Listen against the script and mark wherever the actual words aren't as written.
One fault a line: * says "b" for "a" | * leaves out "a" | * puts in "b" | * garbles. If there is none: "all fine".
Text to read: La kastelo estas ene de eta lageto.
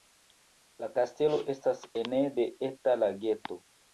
all fine